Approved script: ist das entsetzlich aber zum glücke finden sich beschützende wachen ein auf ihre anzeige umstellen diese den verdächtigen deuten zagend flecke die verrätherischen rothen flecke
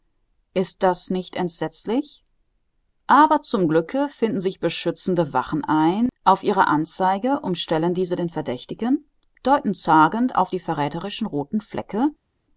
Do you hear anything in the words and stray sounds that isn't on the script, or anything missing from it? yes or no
yes